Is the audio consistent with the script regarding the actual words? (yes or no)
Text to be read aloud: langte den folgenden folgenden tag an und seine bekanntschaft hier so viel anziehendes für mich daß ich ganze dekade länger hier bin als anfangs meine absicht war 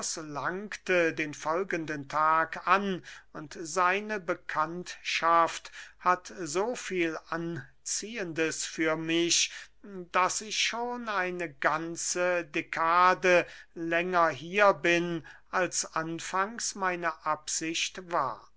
no